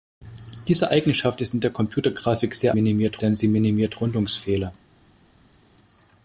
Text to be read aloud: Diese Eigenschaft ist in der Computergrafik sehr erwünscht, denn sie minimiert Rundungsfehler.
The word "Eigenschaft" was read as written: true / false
true